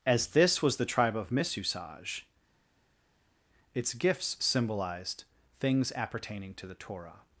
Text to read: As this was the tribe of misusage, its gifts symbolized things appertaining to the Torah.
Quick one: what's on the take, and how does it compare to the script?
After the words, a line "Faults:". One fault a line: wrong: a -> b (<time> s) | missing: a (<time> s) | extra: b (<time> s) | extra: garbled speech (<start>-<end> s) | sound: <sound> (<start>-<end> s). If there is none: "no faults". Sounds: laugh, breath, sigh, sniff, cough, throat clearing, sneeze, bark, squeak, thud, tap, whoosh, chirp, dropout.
As this was the tribe of misusage, its gifts symbolized things appertaining to the Torah.
Faults:
no faults